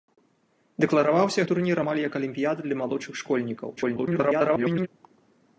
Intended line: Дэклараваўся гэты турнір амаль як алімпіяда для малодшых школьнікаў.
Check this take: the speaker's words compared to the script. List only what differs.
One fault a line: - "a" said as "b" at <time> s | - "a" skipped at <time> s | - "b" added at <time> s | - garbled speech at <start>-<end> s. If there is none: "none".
- "гэты" skipped at 1.4 s
- garbled speech at 3.8-4.9 s